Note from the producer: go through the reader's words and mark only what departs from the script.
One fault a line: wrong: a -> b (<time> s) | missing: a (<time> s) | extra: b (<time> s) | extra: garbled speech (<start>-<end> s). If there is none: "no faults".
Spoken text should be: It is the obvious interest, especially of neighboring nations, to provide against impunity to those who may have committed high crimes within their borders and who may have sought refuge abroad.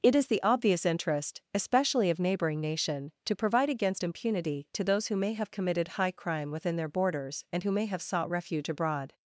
wrong: nations -> nation (2.6 s)
wrong: crimes -> crime (6.1 s)